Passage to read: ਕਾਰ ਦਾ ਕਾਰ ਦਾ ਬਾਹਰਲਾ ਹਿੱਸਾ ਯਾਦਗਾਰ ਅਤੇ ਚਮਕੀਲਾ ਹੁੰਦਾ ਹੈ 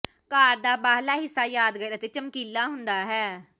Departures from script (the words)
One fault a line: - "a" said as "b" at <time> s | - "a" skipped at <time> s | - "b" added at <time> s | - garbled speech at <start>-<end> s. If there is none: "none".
- "ਕਾਰ ਦਾ" skipped at 0.8 s